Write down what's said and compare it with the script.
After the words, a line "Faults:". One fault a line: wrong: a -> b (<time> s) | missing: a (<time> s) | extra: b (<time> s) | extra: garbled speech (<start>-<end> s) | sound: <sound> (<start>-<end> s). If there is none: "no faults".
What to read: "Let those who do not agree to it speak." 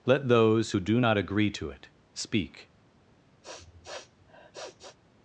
"Let those who do not agree to it speak."
Faults:
sound: sniff (3.4-5.0 s)